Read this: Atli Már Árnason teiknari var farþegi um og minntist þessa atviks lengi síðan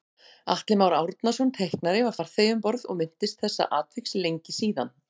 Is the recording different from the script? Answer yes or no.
yes